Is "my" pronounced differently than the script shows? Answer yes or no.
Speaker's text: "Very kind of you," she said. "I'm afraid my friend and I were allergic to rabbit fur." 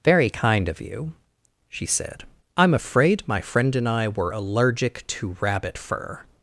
no